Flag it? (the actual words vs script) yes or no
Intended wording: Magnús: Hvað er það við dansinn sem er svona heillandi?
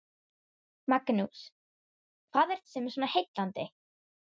yes